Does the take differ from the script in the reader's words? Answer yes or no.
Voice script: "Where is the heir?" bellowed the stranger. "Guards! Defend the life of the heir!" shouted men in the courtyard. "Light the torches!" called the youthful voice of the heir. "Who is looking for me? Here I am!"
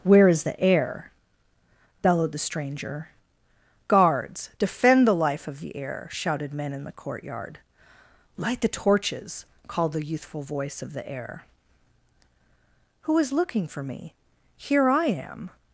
no